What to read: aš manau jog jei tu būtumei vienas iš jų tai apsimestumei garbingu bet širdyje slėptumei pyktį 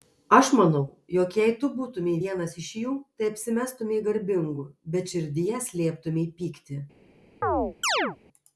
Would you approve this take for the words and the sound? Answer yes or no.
no